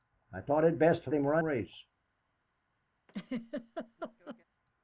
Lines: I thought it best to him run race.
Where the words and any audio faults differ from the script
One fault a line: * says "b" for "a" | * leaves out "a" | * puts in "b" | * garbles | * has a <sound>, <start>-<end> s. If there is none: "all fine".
* has a laugh, 3.1-4.4 s